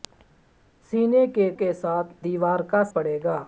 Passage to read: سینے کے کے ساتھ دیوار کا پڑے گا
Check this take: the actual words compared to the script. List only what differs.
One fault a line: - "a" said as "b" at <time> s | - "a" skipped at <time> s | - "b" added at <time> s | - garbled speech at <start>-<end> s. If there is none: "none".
none